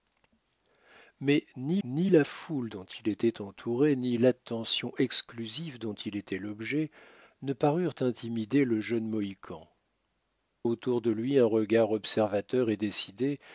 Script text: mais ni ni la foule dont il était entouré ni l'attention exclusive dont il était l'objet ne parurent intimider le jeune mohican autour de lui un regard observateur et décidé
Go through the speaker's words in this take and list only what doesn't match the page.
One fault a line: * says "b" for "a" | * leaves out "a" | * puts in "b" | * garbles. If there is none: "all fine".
all fine